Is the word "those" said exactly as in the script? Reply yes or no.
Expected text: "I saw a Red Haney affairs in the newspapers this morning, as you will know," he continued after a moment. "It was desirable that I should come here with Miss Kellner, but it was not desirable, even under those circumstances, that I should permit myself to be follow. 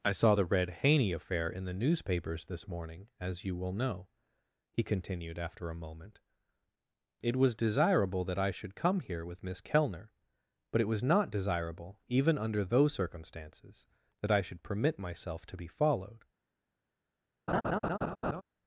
yes